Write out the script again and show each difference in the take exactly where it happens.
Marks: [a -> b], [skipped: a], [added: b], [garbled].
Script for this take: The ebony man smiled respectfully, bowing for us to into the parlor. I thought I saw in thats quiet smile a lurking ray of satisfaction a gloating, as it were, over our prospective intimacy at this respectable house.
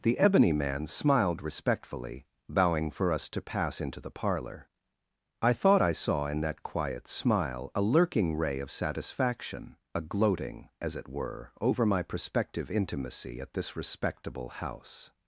The ebony man smiled respectfully, bowing for us to [added: pass] into the parlor. I thought I saw in [thats -> that] quiet smile a lurking ray of satisfaction a gloating, as it were, over [our -> my] prospective intimacy at this respectable house.